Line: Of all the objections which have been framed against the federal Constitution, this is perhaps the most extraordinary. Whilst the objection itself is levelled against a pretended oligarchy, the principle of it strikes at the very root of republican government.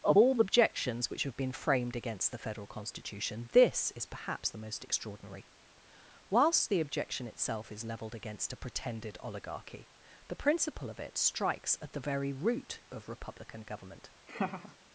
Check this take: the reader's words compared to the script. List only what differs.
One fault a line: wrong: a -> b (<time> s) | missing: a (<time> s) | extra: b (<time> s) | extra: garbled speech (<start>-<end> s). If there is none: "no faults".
missing: the (0.4 s)